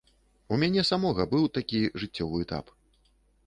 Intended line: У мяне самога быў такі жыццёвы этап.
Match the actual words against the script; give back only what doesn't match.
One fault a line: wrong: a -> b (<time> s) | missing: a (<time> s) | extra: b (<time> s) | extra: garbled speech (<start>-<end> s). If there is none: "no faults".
no faults